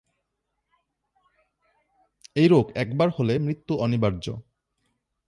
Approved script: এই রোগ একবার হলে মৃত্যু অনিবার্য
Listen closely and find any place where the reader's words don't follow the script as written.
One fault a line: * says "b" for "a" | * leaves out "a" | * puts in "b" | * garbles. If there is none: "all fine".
all fine